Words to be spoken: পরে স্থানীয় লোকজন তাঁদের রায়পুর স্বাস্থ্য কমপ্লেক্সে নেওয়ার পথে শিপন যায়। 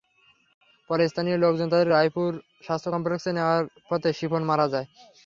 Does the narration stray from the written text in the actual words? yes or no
yes